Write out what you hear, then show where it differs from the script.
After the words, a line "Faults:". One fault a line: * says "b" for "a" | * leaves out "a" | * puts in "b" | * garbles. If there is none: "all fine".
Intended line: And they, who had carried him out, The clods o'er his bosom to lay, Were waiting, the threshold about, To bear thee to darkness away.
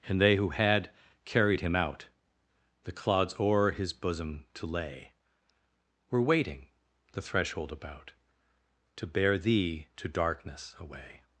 And they, who had carried him out, The clods o'er his bosom to lay, Were waiting, the threshold about, To bear thee to darkness away.
Faults:
all fine